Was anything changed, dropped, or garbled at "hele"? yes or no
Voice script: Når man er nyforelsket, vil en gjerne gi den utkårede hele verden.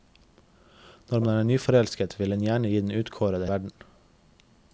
yes